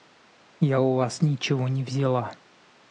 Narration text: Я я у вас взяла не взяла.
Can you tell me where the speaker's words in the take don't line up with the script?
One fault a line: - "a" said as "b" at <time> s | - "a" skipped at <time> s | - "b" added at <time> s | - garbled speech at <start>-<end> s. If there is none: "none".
- "я" skipped at 0.8 s
- "взяла" said as "ничего" at 1.2 s